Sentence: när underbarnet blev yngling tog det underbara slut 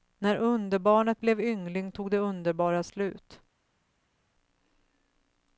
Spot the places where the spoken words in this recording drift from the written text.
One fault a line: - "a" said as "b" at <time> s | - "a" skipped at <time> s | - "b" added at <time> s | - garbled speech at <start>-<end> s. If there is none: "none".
none